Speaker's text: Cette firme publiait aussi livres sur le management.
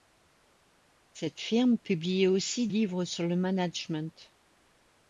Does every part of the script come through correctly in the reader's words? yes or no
yes